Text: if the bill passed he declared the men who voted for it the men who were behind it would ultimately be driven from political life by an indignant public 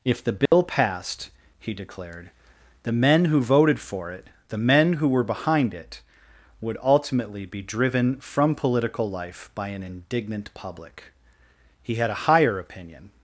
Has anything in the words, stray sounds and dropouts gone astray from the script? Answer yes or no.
yes